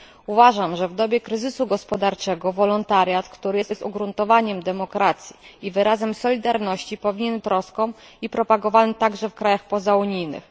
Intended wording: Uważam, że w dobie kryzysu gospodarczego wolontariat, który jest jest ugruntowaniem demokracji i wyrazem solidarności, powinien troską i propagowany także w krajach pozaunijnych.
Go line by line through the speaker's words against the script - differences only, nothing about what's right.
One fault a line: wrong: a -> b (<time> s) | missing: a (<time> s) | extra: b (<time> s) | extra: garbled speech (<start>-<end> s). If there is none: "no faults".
no faults